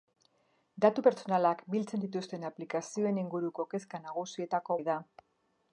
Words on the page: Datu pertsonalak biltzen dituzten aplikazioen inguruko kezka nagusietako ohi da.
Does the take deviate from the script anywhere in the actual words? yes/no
no